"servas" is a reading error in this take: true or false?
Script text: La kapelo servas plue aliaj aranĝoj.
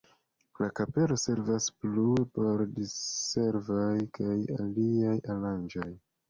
false